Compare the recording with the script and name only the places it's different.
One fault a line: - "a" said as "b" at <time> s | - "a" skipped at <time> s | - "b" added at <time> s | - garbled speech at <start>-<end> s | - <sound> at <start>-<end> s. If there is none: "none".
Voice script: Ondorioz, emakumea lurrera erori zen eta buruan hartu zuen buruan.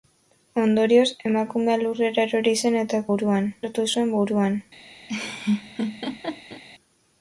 - laugh at 5.1-6.6 s